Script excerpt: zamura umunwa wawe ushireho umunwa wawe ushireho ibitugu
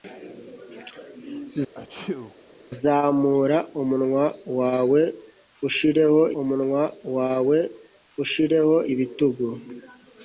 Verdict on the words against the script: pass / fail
pass